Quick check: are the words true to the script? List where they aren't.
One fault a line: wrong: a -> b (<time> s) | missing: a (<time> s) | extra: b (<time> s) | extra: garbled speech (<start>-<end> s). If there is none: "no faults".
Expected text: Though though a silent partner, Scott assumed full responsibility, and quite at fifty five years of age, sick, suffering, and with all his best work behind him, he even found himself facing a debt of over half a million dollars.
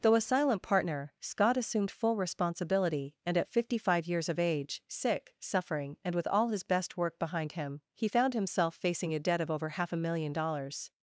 missing: though (0.1 s)
missing: quite (3.4 s)
missing: even (8.1 s)